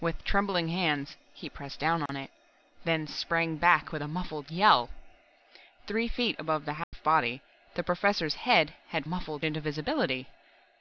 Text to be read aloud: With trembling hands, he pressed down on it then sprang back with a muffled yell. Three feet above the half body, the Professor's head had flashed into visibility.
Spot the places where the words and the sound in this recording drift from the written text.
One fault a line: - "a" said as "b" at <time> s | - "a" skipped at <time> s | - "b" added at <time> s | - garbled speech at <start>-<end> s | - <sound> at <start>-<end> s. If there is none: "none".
- dropout at 2.1-2.1 s
- dropout at 6.8-6.9 s
- "flashed" said as "muffled" at 9.0 s